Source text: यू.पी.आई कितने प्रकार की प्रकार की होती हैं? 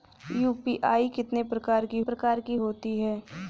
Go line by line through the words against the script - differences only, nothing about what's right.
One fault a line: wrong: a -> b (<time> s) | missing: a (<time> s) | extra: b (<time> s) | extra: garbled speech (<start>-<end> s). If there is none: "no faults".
no faults